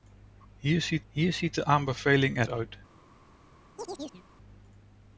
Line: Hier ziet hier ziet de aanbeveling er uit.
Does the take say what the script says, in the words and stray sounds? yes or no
no